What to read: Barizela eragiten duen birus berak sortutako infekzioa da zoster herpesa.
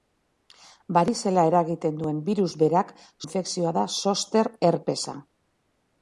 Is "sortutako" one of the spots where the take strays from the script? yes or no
yes